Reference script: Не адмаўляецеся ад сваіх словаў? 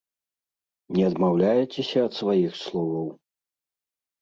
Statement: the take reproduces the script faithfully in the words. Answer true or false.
true